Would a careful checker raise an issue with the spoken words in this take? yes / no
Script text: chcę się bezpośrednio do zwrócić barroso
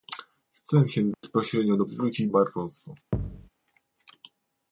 no